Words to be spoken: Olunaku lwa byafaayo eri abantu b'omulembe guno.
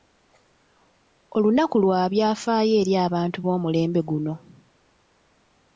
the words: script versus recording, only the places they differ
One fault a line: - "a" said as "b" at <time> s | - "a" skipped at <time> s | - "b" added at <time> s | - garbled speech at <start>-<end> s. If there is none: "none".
none